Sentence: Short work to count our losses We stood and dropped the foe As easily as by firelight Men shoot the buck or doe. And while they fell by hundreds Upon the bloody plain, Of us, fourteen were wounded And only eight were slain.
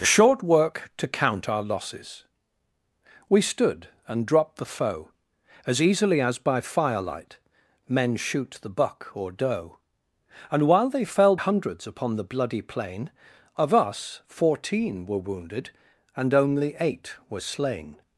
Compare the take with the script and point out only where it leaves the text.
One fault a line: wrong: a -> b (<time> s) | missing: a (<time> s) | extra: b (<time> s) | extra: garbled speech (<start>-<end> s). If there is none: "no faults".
missing: by (11.3 s)